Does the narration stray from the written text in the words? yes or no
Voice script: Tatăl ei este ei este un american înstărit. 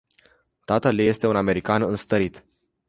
yes